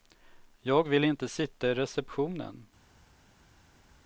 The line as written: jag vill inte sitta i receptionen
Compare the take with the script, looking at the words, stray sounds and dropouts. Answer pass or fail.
pass